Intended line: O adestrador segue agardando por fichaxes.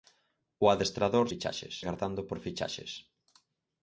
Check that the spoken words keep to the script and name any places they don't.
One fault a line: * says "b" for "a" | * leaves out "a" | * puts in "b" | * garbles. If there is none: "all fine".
* says "fichaxes" for "segue"